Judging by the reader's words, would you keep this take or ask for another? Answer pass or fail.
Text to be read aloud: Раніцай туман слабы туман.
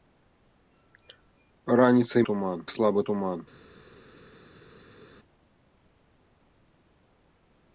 pass